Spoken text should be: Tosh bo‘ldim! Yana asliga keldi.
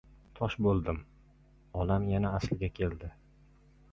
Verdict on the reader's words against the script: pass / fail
fail